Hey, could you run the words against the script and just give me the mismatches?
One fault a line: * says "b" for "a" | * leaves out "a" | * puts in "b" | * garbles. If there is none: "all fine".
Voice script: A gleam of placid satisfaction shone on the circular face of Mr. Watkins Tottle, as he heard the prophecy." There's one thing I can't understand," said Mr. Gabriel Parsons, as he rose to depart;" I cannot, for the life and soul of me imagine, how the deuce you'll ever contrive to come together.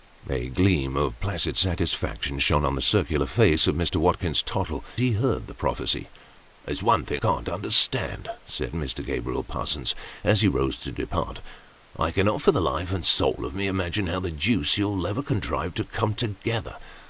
* leaves out "as"
* leaves out "I"